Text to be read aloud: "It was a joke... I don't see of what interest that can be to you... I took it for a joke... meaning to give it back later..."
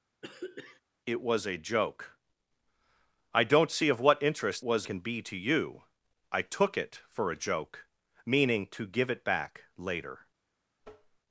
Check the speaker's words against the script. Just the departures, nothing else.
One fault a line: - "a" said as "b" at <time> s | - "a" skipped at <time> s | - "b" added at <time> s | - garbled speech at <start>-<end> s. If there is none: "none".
- "that" said as "was" at 4.6 s